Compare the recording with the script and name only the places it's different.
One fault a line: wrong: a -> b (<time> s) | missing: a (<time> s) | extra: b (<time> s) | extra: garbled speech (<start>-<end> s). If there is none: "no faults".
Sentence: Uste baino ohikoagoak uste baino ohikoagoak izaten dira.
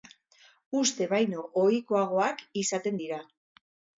missing: uste baino ohikoagoak (2.4 s)